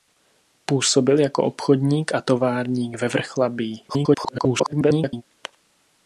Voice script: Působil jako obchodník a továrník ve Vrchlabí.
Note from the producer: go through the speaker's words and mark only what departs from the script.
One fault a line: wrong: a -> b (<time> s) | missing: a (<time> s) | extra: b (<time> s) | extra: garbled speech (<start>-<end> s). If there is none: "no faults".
extra: garbled speech (3.9-5.2 s)